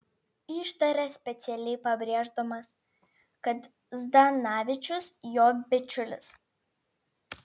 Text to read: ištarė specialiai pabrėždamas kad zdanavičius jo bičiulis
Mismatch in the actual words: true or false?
false